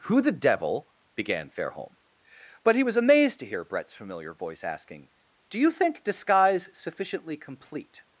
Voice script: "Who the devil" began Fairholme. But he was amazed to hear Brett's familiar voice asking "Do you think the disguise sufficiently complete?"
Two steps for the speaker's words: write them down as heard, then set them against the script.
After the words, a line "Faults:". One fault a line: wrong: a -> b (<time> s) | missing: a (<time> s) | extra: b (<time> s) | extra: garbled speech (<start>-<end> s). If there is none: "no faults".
"Who the devil" began Fairholme. But he was amazed to hear Brett's familiar voice asking "Do you think disguise sufficiently complete?"
Faults:
missing: the (6.0 s)